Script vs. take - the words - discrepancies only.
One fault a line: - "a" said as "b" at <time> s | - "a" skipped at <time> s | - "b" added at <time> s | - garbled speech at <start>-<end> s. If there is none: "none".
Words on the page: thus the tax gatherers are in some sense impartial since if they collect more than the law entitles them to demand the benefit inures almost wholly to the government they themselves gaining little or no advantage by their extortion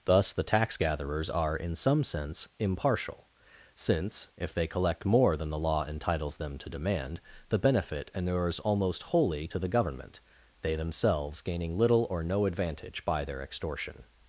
none